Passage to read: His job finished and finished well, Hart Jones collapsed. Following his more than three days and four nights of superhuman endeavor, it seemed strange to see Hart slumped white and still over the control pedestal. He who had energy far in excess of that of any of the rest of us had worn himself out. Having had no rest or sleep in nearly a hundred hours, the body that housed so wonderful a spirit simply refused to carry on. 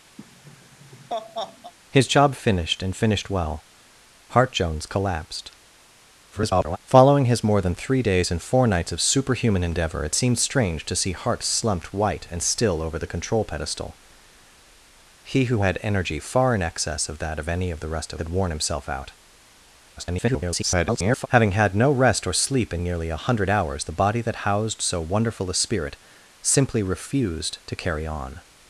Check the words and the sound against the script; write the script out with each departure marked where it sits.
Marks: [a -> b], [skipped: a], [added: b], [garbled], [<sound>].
[laugh] His job finished and finished well, Hart Jones collapsed. [garbled] Following his more than three days and four nights of superhuman endeavor, it seemed strange to see Hart slumped white and still over the control pedestal. He who had energy far in excess of that of any of the rest of [skipped: us] had worn himself out. [garbled] Having had no rest or sleep in nearly a hundred hours, the body that housed so wonderful a spirit simply refused to carry on.